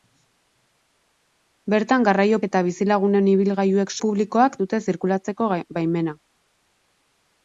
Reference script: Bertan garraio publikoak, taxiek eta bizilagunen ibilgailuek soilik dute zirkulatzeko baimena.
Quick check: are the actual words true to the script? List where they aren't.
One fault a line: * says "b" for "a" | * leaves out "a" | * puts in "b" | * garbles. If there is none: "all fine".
* leaves out "publikoak taxiek"
* says "publikoak" for "soilik"